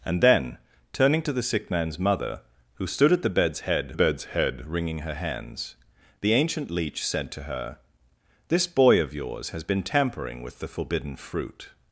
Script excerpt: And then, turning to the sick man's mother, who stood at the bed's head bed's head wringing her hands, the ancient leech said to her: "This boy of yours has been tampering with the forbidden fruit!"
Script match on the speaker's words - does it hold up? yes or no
yes